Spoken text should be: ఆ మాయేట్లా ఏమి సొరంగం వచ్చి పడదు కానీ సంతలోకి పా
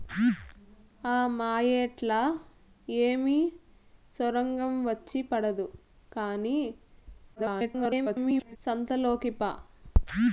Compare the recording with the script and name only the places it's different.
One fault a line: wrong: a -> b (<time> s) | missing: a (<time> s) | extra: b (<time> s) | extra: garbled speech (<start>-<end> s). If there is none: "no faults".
extra: garbled speech (7.4-8.6 s)